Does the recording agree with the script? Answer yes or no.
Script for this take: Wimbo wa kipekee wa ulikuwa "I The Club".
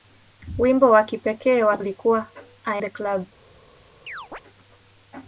yes